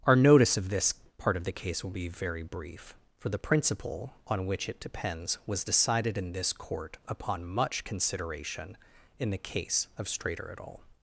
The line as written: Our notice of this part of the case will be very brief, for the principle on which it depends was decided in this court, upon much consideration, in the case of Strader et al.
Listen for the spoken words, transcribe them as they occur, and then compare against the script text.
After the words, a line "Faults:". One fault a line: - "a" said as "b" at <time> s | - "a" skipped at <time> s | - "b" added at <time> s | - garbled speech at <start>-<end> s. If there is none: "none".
Our notice of this part of the case will be very brief, for the principle on which it depends was decided in this court, upon much consideration, in the case of Strader et al.
Faults:
none